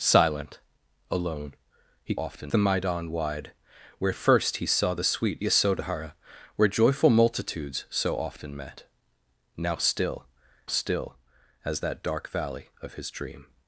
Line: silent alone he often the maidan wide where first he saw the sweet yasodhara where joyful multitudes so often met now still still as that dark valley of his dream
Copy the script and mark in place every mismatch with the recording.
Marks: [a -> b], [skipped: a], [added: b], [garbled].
silent alone he often the maidan wide where first he saw the sweet yasodhara where joyful multitudes so often met now still still as that dark valley of his dream